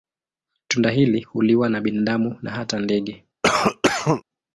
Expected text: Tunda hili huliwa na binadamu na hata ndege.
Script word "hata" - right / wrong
right